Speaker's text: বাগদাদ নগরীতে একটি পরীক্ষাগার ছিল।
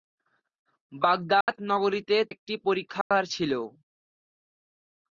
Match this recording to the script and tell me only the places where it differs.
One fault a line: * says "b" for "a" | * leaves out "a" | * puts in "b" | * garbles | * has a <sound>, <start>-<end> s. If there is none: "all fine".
* has a dropout, 1.4-1.5 s
* has a dropout, 3.0-3.1 s